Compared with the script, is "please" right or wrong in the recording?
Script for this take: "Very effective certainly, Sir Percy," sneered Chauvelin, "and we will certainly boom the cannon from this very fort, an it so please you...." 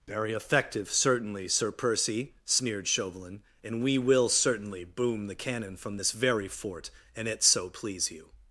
right